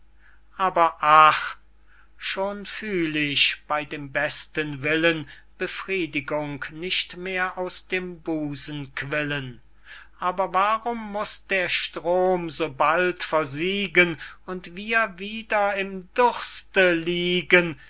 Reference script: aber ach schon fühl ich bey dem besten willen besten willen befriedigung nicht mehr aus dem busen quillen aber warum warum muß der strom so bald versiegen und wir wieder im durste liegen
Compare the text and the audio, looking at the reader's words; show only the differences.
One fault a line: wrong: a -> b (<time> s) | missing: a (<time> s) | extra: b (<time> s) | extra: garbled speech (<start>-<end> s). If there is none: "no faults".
missing: besten willen (5.3 s)
missing: warum (11.1 s)